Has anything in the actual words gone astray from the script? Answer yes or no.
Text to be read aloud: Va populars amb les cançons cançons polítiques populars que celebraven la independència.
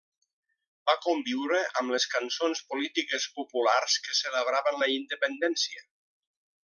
yes